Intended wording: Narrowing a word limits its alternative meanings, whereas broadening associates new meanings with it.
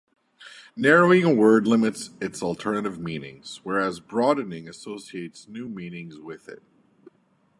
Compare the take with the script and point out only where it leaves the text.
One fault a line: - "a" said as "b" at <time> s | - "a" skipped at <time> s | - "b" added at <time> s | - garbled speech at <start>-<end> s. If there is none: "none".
none